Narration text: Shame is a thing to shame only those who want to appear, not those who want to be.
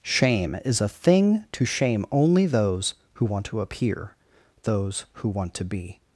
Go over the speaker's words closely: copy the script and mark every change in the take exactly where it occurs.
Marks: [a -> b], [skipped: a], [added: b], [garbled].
Shame is a thing to shame only those who want to appear, [skipped: not] those who want to be.